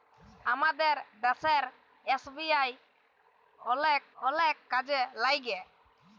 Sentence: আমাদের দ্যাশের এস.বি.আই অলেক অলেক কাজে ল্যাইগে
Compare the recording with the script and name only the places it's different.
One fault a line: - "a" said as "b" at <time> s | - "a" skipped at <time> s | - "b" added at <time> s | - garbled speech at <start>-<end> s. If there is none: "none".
none